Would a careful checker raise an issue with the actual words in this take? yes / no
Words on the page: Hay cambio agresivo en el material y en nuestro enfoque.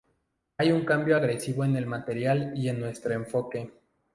yes